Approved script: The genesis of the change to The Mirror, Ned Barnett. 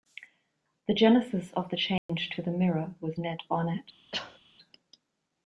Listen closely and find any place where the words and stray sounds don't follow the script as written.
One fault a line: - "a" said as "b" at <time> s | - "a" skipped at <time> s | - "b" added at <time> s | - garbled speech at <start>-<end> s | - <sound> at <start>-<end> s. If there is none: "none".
- dropout at 2.0-2.1 s
- "was" added at 3.0 s
- cough at 4.1-4.4 s